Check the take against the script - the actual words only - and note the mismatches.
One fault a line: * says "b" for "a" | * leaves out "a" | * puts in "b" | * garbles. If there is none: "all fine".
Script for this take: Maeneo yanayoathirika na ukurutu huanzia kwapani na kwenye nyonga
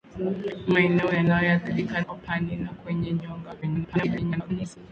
* leaves out "na ukurutu huanzia"
* garbles